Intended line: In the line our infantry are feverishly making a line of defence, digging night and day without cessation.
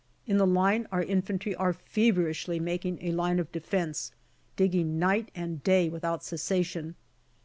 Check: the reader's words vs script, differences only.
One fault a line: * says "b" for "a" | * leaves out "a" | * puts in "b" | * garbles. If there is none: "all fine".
all fine